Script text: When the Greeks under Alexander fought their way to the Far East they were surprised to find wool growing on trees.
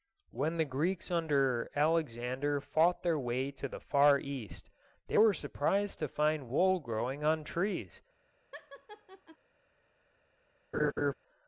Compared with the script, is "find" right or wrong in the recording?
right